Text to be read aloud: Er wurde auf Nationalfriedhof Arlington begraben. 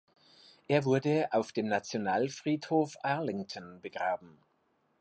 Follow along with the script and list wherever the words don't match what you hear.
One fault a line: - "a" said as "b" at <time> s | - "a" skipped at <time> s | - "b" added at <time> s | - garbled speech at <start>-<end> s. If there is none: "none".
- "dem" added at 1.5 s